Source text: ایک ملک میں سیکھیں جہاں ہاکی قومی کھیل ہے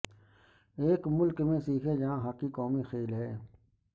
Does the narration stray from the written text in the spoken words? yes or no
no